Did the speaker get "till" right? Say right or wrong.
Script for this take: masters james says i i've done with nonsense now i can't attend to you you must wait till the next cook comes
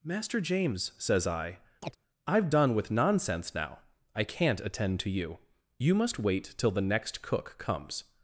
right